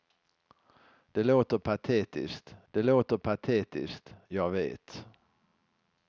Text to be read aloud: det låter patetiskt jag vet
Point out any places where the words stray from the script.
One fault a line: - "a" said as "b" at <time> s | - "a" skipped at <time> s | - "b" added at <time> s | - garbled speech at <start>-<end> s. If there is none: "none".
- "det låter patetiskt" added at 2.7 s